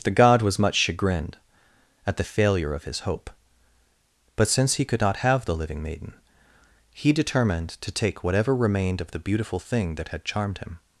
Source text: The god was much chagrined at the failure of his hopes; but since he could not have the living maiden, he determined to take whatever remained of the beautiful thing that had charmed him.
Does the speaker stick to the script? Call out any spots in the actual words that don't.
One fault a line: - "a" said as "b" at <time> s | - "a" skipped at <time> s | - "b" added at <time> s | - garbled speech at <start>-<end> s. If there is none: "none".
- "hopes" said as "hope" at 3.0 s